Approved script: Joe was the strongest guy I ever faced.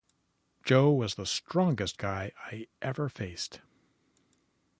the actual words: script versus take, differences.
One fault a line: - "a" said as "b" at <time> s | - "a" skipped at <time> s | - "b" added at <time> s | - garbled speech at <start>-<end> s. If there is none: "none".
none